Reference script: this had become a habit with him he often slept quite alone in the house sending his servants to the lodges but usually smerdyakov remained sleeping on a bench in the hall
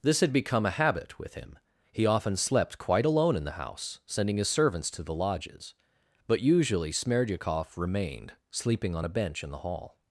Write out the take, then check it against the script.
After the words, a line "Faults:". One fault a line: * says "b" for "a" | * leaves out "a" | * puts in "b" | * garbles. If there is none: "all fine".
this had become a habit with him he often slept quite alone in the house sending his servants to the lodges but usually smerdyakov remained sleeping on a bench in the hall
Faults:
all fine